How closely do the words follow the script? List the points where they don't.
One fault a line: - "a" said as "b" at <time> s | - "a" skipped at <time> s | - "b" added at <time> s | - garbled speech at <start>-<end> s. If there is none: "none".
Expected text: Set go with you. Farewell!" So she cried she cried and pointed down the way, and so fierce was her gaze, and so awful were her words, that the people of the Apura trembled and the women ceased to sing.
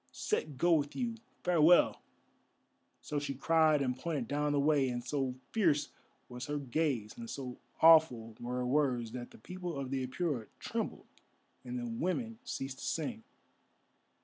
- "she cried" skipped at 3.8 s